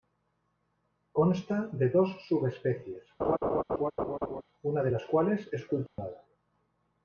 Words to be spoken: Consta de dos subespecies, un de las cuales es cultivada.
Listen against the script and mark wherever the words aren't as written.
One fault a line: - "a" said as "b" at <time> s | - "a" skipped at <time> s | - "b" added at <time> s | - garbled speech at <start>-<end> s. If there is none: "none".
- "un" said as "una" at 4.6 s